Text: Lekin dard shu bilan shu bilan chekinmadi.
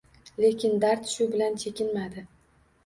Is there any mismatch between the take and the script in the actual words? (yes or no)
yes